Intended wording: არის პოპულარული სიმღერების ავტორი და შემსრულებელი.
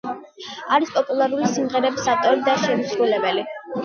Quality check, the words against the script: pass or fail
pass